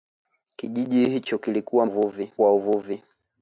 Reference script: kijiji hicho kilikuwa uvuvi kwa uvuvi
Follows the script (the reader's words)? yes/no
yes